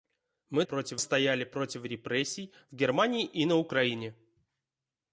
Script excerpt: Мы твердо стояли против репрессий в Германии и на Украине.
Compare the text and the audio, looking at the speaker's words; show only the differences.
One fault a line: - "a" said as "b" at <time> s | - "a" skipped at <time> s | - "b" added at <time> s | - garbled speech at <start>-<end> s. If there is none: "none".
- "твердо" said as "против" at 0.6 s